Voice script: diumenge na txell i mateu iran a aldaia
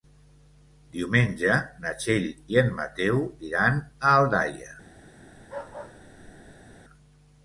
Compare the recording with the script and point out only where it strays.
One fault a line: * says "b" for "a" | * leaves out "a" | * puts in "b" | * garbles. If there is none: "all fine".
* puts in "en"